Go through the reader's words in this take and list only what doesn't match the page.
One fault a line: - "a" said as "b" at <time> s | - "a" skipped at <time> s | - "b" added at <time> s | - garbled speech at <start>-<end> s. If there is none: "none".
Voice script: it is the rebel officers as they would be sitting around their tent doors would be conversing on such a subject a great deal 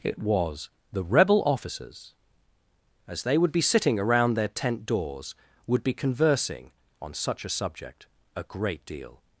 - "is" said as "was" at 0.2 s